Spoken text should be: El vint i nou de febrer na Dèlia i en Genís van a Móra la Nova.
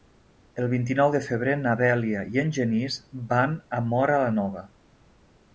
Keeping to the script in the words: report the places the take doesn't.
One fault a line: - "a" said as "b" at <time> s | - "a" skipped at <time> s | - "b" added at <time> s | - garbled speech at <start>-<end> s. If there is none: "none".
none